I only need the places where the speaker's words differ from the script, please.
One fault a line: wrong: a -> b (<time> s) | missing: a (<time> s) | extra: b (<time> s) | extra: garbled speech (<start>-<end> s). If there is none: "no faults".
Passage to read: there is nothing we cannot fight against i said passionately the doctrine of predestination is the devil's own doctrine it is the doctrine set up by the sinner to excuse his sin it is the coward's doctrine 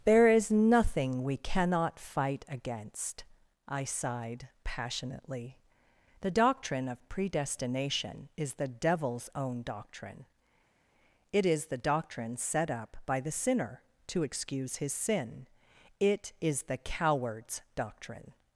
wrong: said -> sighed (3.8 s)